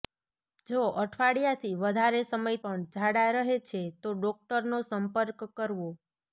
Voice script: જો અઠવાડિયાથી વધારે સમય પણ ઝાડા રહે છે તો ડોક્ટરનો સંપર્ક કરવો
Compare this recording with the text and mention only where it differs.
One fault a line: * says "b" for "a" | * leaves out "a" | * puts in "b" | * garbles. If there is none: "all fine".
all fine